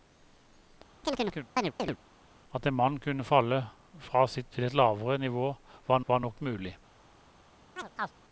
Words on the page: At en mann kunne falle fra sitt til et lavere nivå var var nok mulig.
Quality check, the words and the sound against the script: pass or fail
fail